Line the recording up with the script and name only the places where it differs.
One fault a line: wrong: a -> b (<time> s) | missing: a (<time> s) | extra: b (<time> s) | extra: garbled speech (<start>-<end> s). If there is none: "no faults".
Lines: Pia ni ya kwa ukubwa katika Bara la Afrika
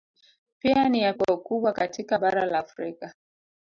no faults